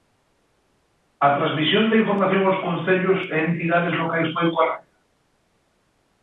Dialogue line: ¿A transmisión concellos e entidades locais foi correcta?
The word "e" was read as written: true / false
true